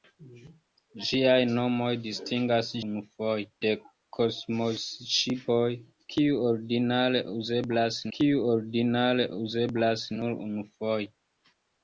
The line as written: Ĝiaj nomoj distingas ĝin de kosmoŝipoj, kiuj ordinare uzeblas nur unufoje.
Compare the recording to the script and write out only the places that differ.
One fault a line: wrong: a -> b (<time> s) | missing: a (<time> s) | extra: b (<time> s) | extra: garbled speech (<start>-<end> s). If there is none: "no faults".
wrong: ĝin -> unufoje (2.9 s)
extra: kiuj ordinare uzeblas (8.2 s)